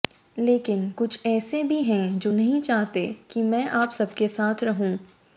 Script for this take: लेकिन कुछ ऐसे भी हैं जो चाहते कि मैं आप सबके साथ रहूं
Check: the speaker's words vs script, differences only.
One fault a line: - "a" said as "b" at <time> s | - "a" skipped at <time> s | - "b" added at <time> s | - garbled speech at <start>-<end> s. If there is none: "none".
- "नहीं" added at 2.3 s